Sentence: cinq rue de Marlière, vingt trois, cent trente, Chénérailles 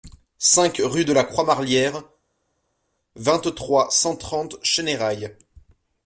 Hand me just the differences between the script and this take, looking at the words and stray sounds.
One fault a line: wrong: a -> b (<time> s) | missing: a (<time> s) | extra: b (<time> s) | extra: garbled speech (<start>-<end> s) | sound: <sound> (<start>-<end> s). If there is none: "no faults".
extra: la Croix (1.1 s)